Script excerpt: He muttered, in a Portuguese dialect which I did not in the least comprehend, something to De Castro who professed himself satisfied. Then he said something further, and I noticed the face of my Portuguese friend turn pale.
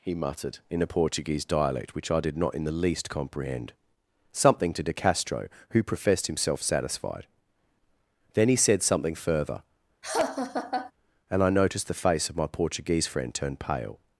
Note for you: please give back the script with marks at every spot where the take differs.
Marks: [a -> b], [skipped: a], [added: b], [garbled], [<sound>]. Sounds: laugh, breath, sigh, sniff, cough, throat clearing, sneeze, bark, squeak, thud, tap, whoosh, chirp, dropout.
He muttered, in a Portuguese dialect which I did not in the least comprehend, something to De Castro who professed himself satisfied. Then he said something further, [laugh] and I noticed the face of my Portuguese friend turn pale.